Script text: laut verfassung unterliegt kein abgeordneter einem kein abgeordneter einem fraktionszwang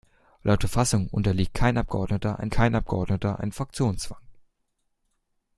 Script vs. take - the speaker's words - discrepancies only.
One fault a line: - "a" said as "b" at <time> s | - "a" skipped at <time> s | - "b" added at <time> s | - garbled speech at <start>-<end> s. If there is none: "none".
none